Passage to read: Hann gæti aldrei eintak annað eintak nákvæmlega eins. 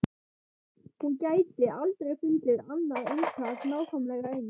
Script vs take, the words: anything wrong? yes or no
yes